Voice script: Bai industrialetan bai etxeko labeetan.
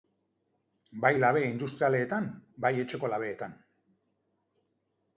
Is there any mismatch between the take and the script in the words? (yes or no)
yes